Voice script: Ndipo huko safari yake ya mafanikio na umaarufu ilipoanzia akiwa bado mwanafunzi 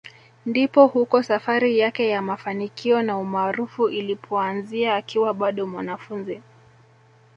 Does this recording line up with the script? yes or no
yes